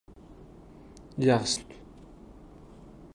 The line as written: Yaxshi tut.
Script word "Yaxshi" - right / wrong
right